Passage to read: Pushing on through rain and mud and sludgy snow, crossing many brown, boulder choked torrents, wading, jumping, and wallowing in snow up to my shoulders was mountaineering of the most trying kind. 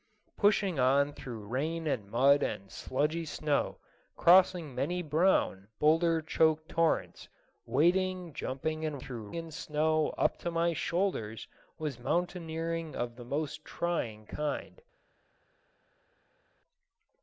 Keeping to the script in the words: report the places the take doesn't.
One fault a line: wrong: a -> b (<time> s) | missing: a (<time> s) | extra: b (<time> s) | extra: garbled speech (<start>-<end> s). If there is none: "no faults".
wrong: wallowing -> through (9.0 s)